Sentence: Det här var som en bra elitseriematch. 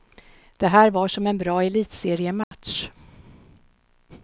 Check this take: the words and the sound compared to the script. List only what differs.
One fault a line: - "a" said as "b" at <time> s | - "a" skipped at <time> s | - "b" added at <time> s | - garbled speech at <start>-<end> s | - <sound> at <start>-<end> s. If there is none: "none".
- dropout at 2.4-2.5 s